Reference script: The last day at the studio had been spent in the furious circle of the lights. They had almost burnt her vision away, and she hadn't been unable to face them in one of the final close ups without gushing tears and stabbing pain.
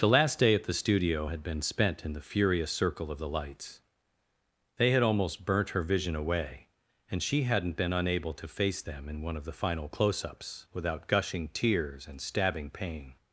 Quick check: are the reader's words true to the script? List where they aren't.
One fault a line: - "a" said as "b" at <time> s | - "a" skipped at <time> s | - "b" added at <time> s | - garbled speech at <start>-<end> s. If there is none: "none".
none